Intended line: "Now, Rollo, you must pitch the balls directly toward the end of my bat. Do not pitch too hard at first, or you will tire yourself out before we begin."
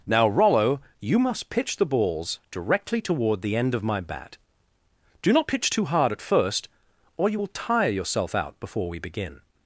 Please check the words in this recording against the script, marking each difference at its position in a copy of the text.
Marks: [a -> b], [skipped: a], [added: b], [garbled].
"Now, Rollo, you must pitch the balls directly toward the end of my bat. Do not pitch too hard at first, or you will tire yourself out before we begin."